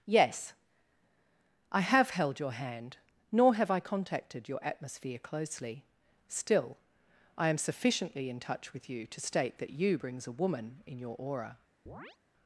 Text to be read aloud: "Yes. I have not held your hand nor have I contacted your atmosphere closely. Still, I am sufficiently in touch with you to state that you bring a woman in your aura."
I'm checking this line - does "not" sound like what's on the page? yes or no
no